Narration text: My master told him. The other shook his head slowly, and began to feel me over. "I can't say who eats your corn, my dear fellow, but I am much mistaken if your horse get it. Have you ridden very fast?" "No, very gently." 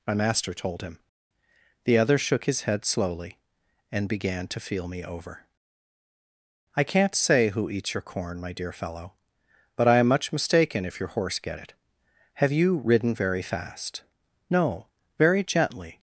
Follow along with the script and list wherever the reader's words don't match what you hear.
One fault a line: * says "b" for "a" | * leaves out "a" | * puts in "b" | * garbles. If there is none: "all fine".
all fine